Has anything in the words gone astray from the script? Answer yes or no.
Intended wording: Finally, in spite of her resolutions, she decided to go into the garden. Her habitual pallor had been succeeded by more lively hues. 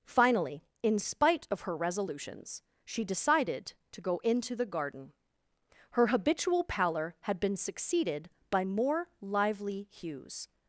no